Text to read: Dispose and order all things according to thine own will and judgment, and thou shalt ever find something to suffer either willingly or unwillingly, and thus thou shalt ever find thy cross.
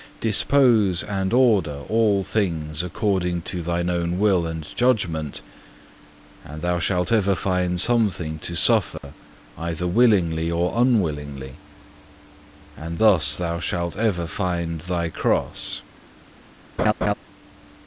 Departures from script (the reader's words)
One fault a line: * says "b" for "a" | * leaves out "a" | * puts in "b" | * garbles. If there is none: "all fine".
all fine